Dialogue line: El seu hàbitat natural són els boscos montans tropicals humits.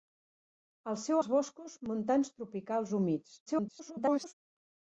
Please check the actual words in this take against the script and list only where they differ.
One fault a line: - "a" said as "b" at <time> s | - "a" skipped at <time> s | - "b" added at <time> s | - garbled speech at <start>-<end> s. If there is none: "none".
- "hàbitat natural són" skipped at 1.2 s
- garbled speech at 3.5-4.3 s